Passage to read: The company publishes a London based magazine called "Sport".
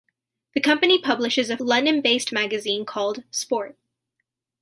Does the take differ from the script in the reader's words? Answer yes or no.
no